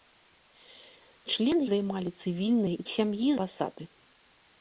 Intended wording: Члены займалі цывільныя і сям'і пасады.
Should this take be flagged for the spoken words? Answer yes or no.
no